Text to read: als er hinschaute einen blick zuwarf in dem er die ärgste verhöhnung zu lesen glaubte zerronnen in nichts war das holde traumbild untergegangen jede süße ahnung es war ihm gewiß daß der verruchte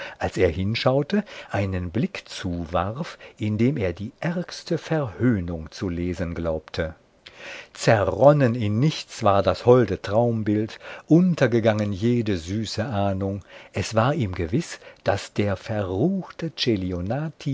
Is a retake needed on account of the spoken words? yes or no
no